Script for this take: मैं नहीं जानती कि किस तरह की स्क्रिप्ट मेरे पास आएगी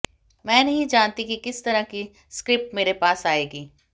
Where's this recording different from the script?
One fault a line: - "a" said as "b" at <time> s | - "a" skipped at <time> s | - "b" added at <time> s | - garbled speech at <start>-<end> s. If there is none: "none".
none